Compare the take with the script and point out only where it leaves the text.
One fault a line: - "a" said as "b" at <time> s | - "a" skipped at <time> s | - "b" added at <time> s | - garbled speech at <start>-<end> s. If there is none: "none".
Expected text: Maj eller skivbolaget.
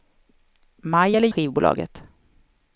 none